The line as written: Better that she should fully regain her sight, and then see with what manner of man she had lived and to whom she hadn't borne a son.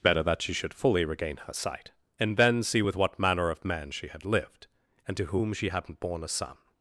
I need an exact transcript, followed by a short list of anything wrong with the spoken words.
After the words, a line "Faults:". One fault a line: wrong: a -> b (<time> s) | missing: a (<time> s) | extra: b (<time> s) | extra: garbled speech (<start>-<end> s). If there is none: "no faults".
Better that she should fully regain her sight, and then see with what manner of man she had lived and to whom she hadn't borne a son.
Faults:
no faults